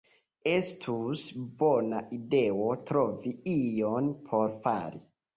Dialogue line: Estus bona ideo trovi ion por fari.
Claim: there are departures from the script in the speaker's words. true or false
false